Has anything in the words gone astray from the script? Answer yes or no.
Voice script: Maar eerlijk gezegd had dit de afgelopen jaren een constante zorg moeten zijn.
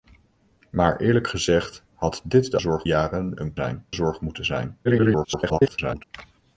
yes